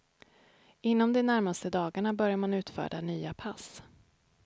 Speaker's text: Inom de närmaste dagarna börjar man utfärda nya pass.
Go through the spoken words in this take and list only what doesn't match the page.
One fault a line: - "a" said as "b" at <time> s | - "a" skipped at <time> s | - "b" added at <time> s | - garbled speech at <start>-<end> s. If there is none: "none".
none